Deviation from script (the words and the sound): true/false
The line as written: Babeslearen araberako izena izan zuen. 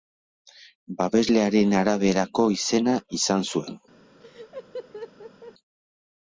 true